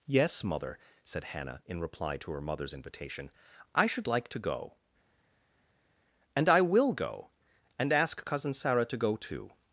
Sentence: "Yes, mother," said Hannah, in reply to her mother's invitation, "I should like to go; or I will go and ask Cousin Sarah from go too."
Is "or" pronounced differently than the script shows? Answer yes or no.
yes